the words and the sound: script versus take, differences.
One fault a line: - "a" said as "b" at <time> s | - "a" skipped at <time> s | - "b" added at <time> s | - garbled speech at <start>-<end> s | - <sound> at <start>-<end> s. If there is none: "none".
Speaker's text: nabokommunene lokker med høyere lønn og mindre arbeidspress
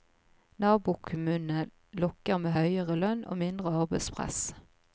none